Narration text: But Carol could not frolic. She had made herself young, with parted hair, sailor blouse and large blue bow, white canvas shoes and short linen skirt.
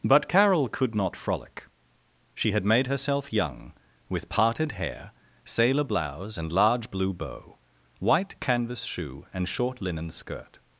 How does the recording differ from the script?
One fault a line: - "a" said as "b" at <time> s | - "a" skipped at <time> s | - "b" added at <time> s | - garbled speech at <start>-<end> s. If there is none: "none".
- "shoes" said as "shoe" at 8.8 s